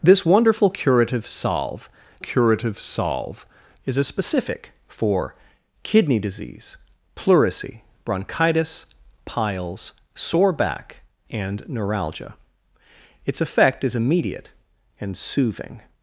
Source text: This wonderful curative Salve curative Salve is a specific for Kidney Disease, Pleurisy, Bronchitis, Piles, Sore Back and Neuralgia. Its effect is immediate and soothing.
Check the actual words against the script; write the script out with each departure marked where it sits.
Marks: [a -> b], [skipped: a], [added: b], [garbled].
This wonderful curative Salve curative Salve is a specific for Kidney Disease, Pleurisy, Bronchitis, Piles, Sore Back and Neuralgia. Its effect is immediate and soothing.